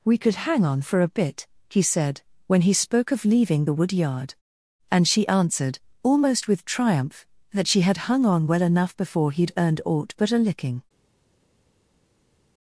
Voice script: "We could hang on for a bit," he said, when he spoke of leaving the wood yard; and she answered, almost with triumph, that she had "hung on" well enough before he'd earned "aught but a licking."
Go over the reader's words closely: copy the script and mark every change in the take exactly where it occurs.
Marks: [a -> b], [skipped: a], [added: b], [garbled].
"We could hang on for a bit," he said, when he spoke of leaving the wood yard; and she answered, almost with triumph, that she had "hung on" well enough before he'd earned "aught but a licking."